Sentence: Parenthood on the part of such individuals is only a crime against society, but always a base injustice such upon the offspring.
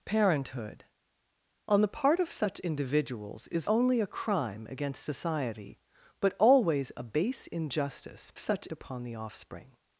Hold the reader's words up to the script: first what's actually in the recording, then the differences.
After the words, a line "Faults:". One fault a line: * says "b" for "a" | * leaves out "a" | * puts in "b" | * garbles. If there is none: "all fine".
Parenthood on the part of such individuals is only a crime against society, but always a base injustice such upon the offspring.
Faults:
all fine